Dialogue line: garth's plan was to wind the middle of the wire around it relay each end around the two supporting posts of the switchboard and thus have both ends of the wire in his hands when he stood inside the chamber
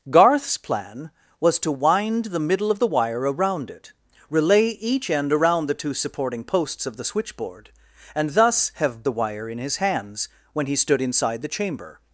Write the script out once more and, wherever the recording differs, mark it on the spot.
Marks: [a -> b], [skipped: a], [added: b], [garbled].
garth's plan was to wind the middle of the wire around it relay each end around the two supporting posts of the switchboard and thus have [skipped: both ends of] the wire in his hands when he stood inside the chamber